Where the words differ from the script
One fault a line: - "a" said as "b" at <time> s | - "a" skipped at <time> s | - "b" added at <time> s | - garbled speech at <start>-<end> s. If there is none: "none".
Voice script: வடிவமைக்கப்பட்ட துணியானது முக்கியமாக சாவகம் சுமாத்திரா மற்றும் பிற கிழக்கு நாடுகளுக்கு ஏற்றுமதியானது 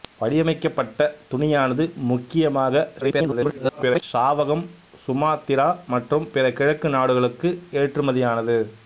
- garbled speech at 3.0-4.0 s